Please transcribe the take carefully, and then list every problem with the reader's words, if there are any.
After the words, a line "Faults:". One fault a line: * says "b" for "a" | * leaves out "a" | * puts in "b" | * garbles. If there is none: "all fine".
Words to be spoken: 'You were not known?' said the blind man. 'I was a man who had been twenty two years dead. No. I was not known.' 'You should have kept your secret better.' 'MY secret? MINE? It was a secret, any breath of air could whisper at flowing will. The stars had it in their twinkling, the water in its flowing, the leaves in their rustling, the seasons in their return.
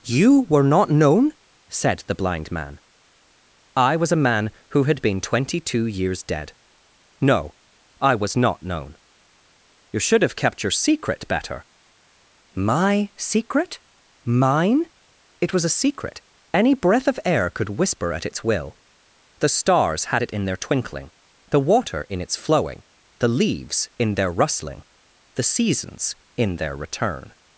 'You were not known?' said the blind man. 'I was a man who had been twenty two years dead. No. I was not known.' 'You should have kept your secret better.' 'MY secret? MINE? It was a secret, any breath of air could whisper at its will. The stars had it in their twinkling, the water in its flowing, the leaves in their rustling, the seasons in their return.
Faults:
* says "its" for "flowing"